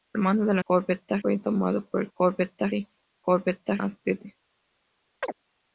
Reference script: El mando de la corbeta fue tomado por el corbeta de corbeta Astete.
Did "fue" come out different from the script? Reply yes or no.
no